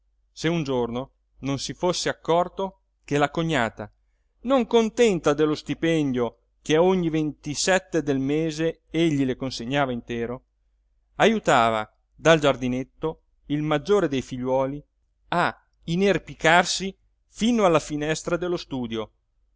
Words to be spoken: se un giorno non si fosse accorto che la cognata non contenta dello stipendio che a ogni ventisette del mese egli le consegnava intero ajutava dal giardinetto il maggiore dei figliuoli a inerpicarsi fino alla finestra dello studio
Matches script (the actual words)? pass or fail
pass